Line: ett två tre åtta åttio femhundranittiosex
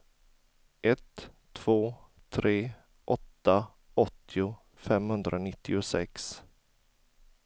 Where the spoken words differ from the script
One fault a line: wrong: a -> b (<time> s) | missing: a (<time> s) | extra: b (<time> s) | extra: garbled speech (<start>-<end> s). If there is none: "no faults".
no faults